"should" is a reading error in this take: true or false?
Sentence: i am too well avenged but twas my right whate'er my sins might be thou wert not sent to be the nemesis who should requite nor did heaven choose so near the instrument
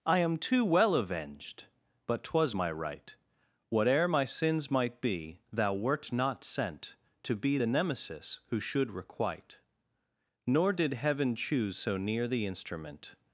false